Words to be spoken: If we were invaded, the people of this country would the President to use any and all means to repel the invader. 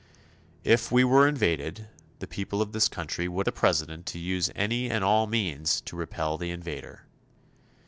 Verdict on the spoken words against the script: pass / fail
pass